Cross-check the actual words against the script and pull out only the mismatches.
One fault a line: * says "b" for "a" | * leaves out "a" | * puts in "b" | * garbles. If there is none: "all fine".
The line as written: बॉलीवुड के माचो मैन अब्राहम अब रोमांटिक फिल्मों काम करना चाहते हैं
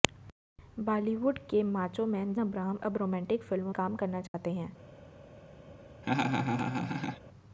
all fine